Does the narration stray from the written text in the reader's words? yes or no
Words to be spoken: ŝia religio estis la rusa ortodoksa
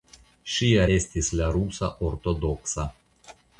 yes